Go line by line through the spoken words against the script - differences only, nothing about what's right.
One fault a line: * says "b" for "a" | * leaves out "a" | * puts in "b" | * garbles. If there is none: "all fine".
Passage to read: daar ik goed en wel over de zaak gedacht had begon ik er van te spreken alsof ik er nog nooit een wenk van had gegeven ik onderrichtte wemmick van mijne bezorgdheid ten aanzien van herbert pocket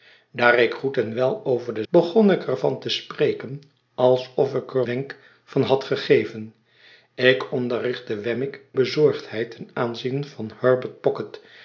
* leaves out "zaak gedacht had"
* leaves out "nog nooit een"
* leaves out "van mijne"